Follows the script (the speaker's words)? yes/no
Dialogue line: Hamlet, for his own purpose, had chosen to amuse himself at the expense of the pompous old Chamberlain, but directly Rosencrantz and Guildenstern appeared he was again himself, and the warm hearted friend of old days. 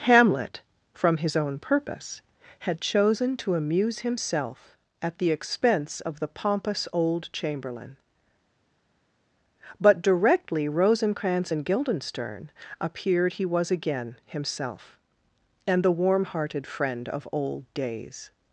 no